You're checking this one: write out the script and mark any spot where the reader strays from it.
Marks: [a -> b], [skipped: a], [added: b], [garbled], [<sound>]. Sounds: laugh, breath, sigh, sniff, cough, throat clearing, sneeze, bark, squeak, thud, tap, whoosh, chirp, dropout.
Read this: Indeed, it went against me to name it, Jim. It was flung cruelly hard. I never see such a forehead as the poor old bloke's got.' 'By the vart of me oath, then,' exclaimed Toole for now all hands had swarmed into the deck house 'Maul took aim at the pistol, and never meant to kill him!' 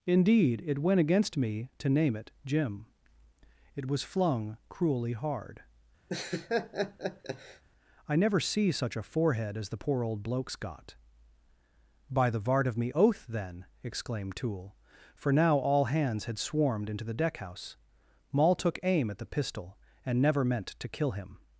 Indeed, it went against me to name it, Jim. It was flung cruelly hard. [laugh] I never see such a forehead as the poor old bloke's got.' 'By the vart of me oath, then,' exclaimed Toole for now all hands had swarmed into the deck house 'Maul took aim at the pistol, and never meant to kill him!'